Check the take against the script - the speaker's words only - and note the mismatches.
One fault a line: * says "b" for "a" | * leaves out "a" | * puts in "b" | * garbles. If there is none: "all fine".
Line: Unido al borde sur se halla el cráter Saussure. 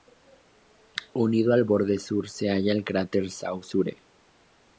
all fine